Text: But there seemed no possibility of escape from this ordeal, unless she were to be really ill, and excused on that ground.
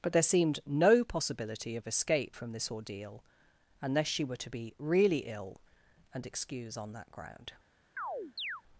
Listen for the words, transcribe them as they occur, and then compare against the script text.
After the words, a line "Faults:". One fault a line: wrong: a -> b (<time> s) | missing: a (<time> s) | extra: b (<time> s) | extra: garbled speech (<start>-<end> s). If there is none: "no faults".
But there seemed no possibility of escape from this ordeal, unless she were to be really ill, and excuse on that ground.
Faults:
wrong: excused -> excuse (6.3 s)